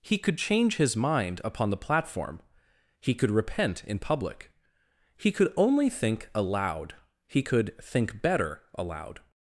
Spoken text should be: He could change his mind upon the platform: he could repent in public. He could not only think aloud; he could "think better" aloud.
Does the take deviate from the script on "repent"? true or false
false